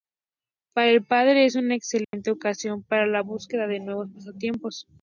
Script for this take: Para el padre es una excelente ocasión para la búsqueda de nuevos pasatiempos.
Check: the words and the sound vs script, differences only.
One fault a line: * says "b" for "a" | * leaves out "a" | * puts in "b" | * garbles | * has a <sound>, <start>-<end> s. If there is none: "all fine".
* has a dropout, 2.0-2.1 s